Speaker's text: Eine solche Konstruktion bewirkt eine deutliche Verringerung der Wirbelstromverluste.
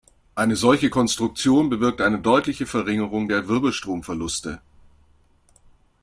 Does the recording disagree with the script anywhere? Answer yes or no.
no